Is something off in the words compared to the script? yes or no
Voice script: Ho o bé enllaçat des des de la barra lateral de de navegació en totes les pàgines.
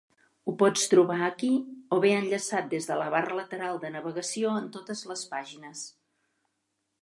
yes